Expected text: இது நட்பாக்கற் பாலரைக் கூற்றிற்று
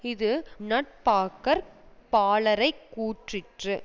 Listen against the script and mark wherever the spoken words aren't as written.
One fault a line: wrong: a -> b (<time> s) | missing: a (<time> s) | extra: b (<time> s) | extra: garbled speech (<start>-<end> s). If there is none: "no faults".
no faults